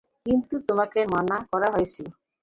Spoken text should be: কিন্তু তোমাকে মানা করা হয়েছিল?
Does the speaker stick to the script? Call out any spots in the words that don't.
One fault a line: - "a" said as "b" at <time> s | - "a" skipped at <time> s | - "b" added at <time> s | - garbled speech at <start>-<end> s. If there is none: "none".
none